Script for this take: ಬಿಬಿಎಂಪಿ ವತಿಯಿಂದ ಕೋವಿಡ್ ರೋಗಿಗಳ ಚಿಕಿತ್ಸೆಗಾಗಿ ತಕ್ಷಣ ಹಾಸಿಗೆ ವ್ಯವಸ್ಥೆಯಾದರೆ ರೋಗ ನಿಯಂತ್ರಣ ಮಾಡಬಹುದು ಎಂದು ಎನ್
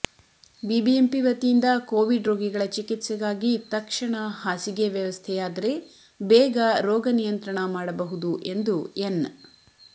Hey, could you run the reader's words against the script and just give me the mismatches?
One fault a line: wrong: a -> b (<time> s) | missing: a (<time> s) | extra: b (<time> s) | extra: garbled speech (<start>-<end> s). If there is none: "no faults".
extra: ಬೇಗ (6.2 s)